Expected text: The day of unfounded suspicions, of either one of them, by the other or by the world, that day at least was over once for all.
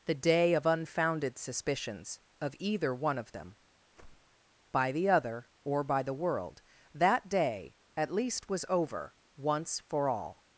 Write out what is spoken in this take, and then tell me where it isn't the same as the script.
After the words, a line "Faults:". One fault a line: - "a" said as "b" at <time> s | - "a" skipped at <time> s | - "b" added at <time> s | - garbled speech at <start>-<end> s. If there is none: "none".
The day of unfounded suspicions, of either one of them, by the other or by the world, that day at least was over once for all.
Faults:
none